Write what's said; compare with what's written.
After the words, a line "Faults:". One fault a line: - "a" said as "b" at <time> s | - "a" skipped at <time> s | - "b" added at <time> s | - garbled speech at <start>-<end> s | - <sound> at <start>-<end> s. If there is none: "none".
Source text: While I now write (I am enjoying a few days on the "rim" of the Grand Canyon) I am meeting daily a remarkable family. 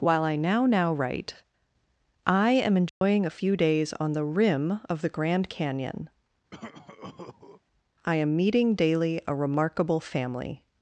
While I now now write (I am enjoying a few days on the "rim" of the Grand Canyon) I am meeting daily a remarkable family.
Faults:
- "now" added at 0.7 s
- dropout at 2.9-3.0 s
- cough at 6.5-7.6 s